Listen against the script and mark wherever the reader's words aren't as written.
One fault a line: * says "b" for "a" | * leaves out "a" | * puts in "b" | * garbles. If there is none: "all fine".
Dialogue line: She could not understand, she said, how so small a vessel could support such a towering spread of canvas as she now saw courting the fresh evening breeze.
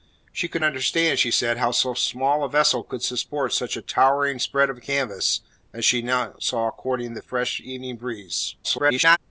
* leaves out "not"
* garbles